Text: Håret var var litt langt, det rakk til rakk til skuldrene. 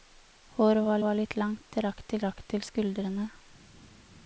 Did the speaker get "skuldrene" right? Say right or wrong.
right